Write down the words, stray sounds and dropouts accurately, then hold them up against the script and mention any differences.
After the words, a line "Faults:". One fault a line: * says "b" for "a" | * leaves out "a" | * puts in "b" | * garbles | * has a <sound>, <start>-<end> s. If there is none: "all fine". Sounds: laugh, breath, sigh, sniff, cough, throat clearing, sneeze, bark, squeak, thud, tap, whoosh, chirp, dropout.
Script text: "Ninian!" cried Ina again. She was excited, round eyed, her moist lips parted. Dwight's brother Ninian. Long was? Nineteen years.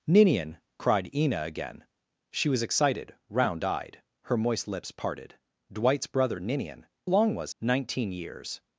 "Ninian!" cried Ina again. She was excited, round eyed, her moist lips parted. Dwight's brother Ninian. Long was? Nineteen years.
Faults:
all fine